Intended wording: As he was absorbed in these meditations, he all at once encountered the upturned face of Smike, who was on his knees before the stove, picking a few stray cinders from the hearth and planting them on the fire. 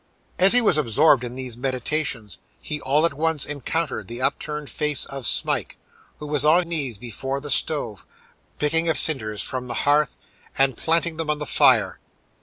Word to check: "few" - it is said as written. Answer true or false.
false